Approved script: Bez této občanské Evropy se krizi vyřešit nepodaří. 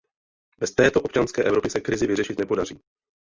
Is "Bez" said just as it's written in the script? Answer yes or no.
yes